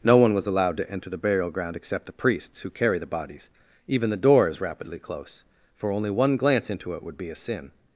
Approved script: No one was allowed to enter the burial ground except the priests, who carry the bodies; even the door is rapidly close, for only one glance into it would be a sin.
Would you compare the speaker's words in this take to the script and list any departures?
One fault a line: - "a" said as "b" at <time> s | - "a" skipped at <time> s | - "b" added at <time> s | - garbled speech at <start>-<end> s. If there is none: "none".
none